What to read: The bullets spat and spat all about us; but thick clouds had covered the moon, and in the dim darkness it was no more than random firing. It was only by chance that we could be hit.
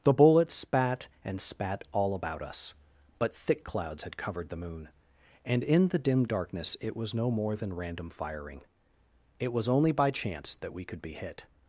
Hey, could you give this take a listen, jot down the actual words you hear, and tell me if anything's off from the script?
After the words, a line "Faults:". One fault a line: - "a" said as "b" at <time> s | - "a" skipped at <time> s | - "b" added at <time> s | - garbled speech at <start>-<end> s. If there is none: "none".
The bullets spat and spat all about us; but thick clouds had covered the moon, and in the dim darkness it was no more than random firing. It was only by chance that we could be hit.
Faults:
none